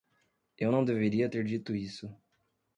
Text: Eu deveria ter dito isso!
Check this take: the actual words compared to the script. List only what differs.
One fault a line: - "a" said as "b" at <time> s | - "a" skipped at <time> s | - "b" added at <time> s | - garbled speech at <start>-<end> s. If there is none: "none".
- "não" added at 0.7 s